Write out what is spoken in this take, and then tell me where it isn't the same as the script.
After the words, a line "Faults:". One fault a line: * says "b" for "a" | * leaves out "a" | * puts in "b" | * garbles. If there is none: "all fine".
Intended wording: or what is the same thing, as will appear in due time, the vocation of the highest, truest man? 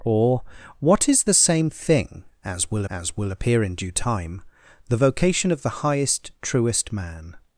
or what is the same thing, as will as will appear in due time, the vocation of the highest, truest man?
Faults:
* puts in "as will"